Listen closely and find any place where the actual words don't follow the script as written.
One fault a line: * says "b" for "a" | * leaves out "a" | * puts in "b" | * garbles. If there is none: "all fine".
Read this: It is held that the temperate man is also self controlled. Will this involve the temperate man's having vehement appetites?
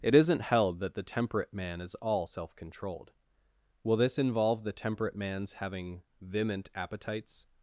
* says "isn't" for "is"
* says "all" for "also"